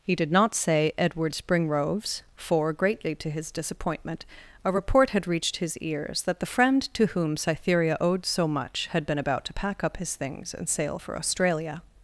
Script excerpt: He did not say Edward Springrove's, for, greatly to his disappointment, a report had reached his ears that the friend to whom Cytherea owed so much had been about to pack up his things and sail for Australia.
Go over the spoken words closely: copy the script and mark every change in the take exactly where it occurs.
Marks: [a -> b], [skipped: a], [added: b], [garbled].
He did not say Edward Springrove's, for, greatly to his disappointment, a report had reached his ears that the friend to whom Cytherea owed so much had been about to pack up his things and sail for Australia.